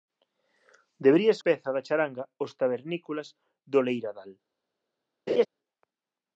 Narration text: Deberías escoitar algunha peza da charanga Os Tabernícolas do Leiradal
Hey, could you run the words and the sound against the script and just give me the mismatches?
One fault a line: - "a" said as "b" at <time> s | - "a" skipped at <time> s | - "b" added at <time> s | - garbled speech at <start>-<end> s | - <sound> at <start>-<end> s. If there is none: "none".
- "escoitar algunha" skipped at 1.4 s
- laugh at 5.3-5.5 s